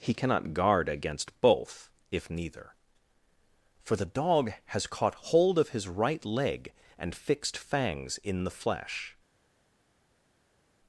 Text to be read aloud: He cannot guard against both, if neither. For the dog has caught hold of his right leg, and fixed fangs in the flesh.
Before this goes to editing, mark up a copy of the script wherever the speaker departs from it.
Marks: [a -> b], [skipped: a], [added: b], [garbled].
He cannot guard against both, if neither. For the dog has caught hold of his right leg, and fixed fangs in the flesh.